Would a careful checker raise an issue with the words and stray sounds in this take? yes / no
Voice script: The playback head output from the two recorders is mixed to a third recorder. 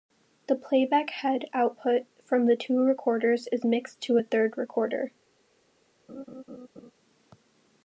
yes